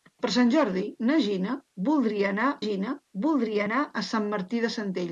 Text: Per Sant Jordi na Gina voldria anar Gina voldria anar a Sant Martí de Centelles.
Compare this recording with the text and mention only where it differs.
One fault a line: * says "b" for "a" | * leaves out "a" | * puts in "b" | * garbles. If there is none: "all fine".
all fine